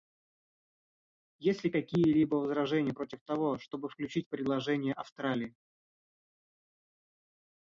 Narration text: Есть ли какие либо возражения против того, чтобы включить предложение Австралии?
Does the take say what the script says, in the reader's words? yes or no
yes